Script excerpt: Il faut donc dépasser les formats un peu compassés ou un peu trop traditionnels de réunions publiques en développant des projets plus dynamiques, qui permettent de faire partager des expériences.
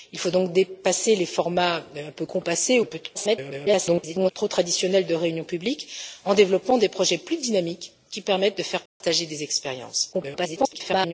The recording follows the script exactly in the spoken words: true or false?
false